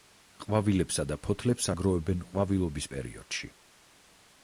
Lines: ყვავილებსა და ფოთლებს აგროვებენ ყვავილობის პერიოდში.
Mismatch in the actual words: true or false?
false